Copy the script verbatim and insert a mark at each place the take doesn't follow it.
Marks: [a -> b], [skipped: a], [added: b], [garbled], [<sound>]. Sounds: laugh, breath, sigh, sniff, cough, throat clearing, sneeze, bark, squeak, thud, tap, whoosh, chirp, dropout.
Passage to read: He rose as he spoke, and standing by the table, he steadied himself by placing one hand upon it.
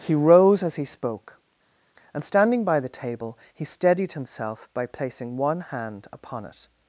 He rose as he spoke, and standing by the table, he steadied himself by placing one hand upon it.